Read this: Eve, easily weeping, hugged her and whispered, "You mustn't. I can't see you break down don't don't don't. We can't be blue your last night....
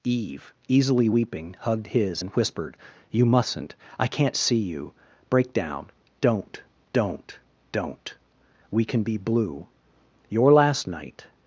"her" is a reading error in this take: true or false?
true